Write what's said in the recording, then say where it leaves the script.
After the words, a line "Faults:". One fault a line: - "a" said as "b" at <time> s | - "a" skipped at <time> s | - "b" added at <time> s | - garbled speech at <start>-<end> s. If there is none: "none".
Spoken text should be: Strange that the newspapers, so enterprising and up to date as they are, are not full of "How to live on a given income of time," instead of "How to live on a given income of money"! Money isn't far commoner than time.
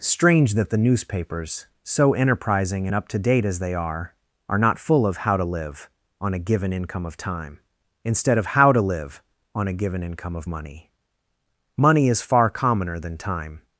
Strange that the newspapers, so enterprising and up to date as they are, are not full of "How to live on a given income of time," instead of "How to live on a given income of money"! Money is far commoner than time.
Faults:
- "isn't" said as "is" at 12.1 s